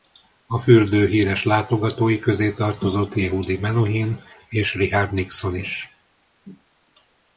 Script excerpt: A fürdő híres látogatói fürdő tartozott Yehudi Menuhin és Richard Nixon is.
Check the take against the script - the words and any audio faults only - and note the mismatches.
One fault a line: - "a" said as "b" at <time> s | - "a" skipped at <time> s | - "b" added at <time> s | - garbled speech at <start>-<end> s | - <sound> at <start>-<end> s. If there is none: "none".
- "fürdő" said as "közé" at 2.2 s